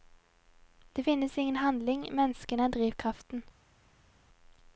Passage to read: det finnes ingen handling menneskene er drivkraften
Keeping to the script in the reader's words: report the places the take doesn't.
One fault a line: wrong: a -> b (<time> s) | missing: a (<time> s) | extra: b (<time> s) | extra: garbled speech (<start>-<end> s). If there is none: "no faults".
no faults